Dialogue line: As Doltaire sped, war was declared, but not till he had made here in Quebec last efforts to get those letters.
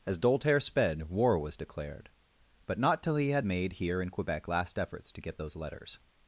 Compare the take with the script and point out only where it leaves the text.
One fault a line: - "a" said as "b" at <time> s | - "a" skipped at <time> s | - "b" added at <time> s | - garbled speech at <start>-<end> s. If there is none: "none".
none